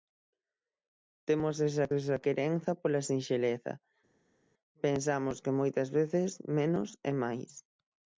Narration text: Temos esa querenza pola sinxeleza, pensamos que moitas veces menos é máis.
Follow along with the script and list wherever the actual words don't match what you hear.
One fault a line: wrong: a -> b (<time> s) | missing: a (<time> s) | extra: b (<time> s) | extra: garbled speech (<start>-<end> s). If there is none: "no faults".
extra: esa (2.0 s)